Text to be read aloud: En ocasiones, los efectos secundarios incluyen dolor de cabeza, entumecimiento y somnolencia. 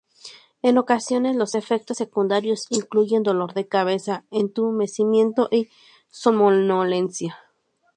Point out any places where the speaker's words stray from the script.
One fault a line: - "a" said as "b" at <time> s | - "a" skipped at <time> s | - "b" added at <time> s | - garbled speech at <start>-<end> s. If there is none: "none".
none